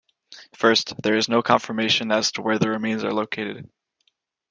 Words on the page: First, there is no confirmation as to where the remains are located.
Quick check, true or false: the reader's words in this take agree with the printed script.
true